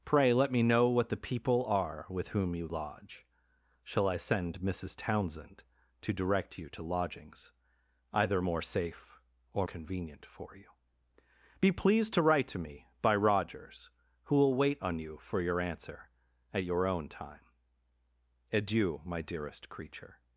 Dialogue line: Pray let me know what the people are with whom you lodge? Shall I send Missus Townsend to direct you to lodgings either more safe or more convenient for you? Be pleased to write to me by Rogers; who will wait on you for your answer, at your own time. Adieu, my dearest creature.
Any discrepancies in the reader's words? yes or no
yes